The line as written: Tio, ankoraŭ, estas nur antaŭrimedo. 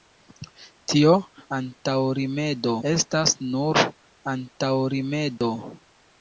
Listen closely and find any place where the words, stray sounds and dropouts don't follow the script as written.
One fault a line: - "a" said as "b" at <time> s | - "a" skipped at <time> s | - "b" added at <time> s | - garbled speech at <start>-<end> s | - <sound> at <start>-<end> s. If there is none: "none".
- "ankoraŭ" said as "antaŭrimedo" at 1.6 s
- dropout at 5.4-5.4 s